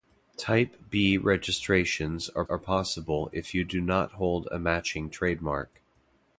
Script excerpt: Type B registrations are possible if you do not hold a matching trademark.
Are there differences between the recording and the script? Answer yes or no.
yes